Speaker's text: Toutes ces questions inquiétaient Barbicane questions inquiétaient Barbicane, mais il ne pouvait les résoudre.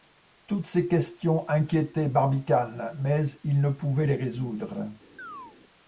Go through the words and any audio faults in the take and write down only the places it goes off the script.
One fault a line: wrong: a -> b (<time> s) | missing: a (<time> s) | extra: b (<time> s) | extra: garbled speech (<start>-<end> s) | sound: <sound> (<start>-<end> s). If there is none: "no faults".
missing: questions inquiétaient Barbicane (3.0 s)
sound: chirp (5.2-5.6 s)